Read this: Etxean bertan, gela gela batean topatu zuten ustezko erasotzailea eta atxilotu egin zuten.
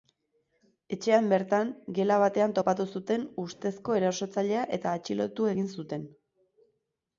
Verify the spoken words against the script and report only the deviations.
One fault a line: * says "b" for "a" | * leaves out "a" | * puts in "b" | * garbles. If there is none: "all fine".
* leaves out "gela"